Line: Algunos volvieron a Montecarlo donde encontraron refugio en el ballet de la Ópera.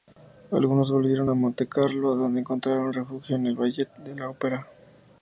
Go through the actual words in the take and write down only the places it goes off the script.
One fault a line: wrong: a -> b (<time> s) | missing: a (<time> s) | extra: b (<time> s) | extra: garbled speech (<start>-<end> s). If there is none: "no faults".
no faults